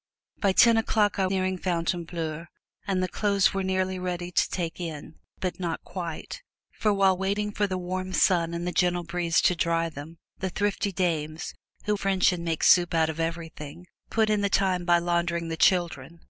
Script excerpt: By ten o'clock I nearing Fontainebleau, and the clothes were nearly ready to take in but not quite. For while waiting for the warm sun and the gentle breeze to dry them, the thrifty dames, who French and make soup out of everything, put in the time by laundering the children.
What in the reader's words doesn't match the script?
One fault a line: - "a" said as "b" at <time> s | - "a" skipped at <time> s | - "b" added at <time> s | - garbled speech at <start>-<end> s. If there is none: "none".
none